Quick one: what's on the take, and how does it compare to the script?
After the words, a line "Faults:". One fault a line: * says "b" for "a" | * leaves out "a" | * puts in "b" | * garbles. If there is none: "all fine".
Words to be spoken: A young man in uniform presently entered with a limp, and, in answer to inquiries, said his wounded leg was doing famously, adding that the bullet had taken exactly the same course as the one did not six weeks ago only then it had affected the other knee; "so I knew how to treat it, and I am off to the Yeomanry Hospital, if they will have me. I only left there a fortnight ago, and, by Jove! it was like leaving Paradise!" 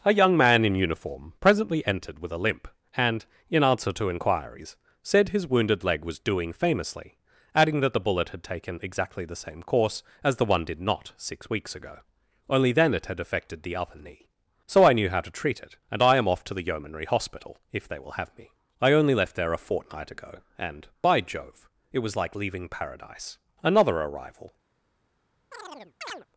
A young man in uniform presently entered with a limp, and, in answer to inquiries, said his wounded leg was doing famously, adding that the bullet had taken exactly the same course as the one did not six weeks ago only then it had affected the other knee; "so I knew how to treat it, and I am off to the Yeomanry Hospital, if they will have me. I only left there a fortnight ago, and, by Jove! it was like leaving Paradise!" Another arrival
Faults:
* puts in "Another arrival"